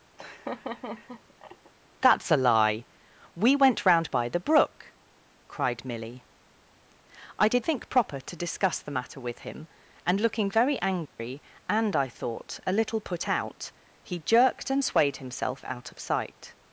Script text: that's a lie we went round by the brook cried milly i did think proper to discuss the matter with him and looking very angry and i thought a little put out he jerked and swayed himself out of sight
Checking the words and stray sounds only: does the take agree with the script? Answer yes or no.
no